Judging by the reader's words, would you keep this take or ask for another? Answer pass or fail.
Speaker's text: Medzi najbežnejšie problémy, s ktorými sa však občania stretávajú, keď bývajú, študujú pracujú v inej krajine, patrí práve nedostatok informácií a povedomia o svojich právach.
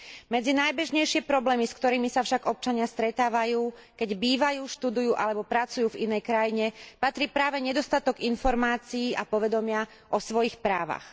fail